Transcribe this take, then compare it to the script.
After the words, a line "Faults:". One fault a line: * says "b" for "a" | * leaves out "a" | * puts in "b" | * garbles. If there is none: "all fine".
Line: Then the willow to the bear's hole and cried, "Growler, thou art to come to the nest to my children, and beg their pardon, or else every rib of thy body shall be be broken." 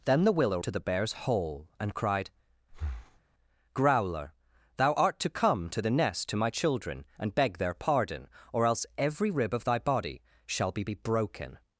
Then the willow to the bear's hole and cried, "Growler, thou art to come to the nest to my children, and beg their pardon, or else every rib of thy body shall be be broken."
Faults:
all fine